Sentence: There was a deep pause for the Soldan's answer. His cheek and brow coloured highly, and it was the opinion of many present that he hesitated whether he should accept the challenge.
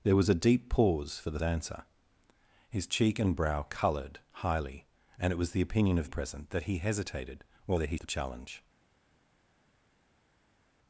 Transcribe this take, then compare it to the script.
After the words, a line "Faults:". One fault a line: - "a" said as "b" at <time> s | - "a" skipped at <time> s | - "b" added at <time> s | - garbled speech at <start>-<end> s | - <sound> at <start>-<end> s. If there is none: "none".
There was a deep pause for the Answer. His cheek and brow coloured highly, and it was the opinion of present that he hesitated whether he the challenge.
Faults:
- "Soldan's" skipped at 1.4 s
- "many" skipped at 6.1 s
- "should accept" skipped at 8.0 s